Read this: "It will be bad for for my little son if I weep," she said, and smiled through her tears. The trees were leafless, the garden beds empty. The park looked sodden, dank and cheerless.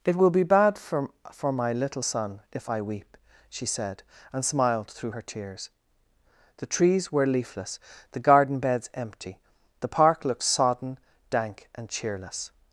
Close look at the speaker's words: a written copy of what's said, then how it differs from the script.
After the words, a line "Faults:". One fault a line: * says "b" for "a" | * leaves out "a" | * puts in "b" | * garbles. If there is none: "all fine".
"It will be bad for for my little son if I weep," she said, and smiled through her tears. The trees were leafless, the garden beds empty. The park looked sodden, dank and cheerless.
Faults:
all fine